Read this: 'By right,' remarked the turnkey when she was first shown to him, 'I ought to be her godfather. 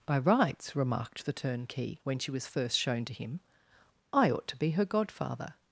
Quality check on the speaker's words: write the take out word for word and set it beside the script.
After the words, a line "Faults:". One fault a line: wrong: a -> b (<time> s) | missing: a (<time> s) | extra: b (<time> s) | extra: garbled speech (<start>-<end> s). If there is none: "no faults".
'By rights,' remarked the turnkey when she was first shown to him, 'I ought to be her godfather.
Faults:
wrong: right -> rights (0.2 s)